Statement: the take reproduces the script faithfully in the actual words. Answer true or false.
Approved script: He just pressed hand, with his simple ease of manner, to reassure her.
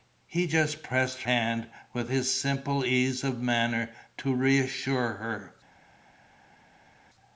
true